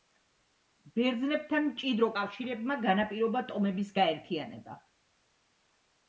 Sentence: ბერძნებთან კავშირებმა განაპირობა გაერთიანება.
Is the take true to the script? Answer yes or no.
no